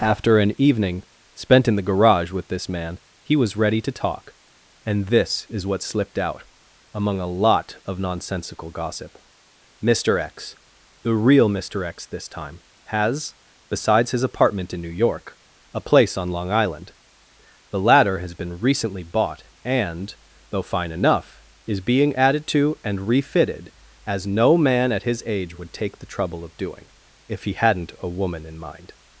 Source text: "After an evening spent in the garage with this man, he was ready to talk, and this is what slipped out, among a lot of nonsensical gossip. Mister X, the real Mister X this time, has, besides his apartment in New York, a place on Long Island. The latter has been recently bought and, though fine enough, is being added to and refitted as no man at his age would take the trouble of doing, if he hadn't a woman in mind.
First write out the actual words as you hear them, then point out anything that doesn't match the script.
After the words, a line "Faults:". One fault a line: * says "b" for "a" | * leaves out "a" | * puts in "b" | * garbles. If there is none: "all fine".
"After an evening spent in the garage with this man, he was ready to talk, and this is what slipped out, among a lot of nonsensical gossip. Mister X, the real Mister X this time, has, besides his apartment in New York, a place on Long Island. The latter has been recently bought and, though fine enough, is being added to and refitted as no man at his age would take the trouble of doing, if he hadn't a woman in mind.
Faults:
all fine